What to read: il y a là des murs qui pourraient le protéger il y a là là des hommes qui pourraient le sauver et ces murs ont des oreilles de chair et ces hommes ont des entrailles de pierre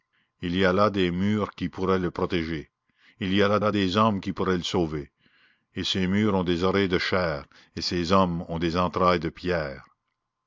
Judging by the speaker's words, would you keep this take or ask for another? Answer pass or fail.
pass